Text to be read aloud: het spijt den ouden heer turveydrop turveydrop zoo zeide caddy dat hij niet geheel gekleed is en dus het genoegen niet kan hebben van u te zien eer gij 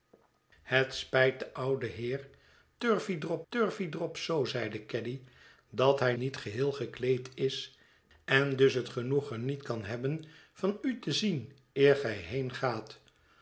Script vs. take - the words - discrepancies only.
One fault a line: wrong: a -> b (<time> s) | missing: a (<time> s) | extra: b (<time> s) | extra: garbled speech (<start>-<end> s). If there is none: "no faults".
no faults